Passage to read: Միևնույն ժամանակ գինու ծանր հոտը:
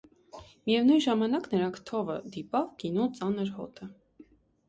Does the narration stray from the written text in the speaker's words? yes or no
yes